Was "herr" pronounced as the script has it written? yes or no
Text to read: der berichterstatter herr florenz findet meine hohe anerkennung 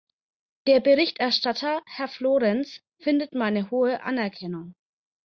yes